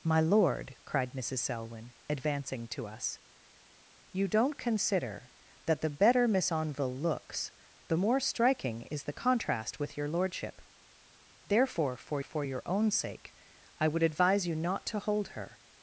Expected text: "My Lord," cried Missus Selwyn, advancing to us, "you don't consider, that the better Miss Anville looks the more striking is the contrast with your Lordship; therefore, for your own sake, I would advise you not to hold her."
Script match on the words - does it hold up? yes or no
no